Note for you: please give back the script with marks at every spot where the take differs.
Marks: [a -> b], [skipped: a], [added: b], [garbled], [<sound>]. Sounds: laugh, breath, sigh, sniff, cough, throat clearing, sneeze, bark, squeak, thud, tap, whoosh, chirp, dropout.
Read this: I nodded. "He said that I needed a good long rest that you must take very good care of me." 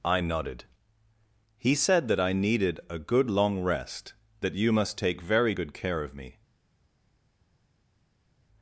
I nodded. "He said that I needed a good long rest that you must take very good care of me."